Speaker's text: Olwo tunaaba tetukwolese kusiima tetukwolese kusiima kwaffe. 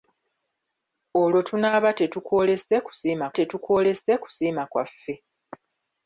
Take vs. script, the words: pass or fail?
pass